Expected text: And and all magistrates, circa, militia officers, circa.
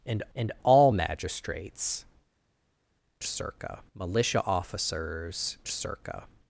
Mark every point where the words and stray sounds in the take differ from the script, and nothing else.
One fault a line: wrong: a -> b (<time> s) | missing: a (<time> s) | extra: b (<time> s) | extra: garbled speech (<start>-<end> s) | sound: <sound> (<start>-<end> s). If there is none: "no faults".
no faults